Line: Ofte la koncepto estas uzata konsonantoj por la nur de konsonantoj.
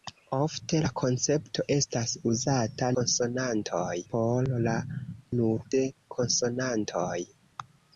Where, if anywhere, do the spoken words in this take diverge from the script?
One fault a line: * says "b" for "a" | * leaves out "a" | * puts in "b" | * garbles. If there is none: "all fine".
all fine